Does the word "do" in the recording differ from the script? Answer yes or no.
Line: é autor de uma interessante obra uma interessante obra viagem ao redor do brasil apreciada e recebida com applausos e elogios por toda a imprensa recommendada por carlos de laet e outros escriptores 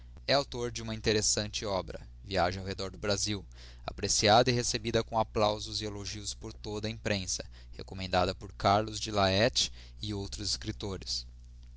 no